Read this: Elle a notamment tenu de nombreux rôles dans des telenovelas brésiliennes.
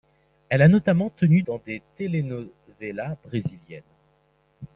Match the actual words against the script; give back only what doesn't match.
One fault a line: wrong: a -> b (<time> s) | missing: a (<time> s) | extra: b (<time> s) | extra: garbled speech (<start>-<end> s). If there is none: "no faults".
missing: de nombreux rôles (1.4 s)